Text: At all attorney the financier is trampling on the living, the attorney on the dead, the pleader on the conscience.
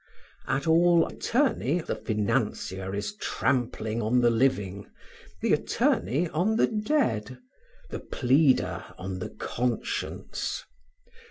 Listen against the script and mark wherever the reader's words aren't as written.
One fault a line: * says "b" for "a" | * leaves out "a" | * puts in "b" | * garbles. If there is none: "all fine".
all fine